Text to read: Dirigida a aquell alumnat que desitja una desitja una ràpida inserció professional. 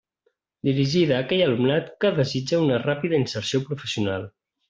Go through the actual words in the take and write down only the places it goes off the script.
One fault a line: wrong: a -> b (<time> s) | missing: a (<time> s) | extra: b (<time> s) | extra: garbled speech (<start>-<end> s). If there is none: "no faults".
missing: desitja una (2.8 s)